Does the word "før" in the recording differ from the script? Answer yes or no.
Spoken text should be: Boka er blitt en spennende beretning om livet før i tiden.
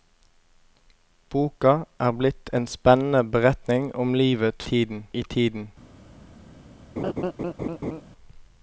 yes